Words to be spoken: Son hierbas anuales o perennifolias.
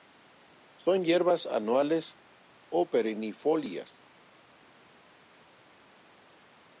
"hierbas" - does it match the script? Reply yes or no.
yes